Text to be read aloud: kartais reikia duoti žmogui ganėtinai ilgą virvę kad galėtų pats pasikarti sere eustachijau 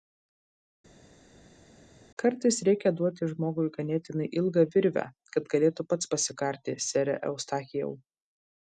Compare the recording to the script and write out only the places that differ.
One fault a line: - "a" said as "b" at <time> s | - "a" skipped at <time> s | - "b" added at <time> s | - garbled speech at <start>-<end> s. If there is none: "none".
none